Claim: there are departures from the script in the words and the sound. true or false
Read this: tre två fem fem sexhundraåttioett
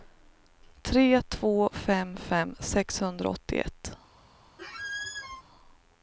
true